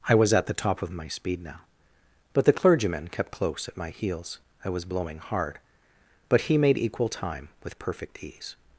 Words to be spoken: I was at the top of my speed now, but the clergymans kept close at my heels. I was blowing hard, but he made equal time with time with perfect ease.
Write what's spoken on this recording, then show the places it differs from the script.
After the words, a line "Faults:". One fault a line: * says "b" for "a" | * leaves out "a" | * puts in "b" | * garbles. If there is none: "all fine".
I was at the top of my speed now, but the clergyman kept close at my heels. I was blowing hard, but he made equal time with perfect ease.
Faults:
* says "clergyman" for "clergymans"
* leaves out "time with"